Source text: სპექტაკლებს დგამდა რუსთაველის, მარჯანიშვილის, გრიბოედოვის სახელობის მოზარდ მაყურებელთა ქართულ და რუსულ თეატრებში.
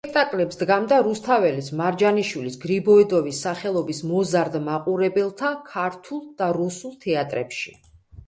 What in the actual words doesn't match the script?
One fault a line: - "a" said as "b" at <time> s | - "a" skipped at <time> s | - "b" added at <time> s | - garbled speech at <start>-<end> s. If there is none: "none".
none